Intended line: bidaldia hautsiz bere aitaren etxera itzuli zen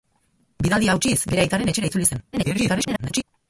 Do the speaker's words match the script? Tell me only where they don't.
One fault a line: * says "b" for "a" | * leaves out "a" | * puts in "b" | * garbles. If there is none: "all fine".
* garbles